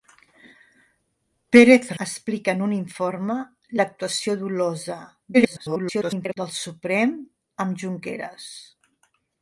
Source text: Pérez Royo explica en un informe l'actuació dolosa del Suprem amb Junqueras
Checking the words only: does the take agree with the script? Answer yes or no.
no